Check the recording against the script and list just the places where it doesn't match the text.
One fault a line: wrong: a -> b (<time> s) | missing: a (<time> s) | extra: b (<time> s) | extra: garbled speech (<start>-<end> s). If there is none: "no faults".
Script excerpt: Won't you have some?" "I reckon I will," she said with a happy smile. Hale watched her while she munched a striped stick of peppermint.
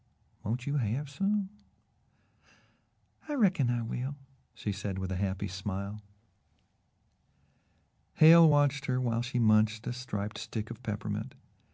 no faults